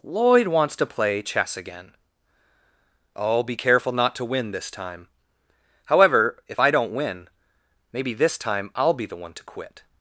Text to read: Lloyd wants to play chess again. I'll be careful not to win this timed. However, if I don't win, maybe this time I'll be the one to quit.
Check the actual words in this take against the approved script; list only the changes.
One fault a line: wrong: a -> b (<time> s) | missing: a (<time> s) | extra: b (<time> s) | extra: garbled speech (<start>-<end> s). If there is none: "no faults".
wrong: timed -> time (4.7 s)